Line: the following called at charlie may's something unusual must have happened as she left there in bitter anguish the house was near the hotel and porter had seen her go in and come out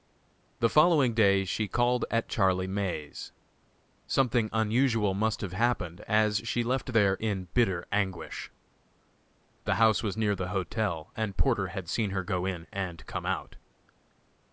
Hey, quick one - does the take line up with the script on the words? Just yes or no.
no